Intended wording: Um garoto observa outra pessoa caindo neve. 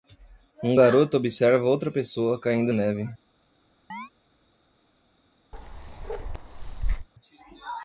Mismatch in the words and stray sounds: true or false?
true